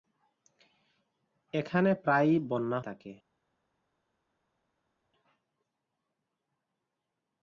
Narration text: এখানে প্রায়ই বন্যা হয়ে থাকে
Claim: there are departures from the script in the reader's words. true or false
true